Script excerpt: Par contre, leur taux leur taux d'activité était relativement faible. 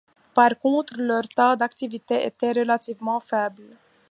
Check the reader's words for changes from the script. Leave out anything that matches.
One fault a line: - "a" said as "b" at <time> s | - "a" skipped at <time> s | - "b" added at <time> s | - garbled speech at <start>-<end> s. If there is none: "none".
- "leur taux" skipped at 1.6 s